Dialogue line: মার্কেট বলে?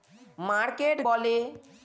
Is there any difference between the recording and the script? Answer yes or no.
no